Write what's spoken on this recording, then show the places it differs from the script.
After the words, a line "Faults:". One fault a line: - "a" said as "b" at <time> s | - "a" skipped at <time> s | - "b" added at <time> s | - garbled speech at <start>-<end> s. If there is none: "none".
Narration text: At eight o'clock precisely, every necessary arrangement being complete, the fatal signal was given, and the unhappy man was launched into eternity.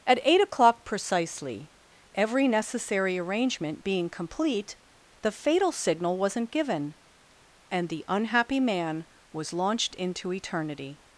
At eight o'clock precisely, every necessary arrangement being complete, the fatal signal wasn't given, and the unhappy man was launched into eternity.
Faults:
- "was" said as "wasn't" at 6.2 s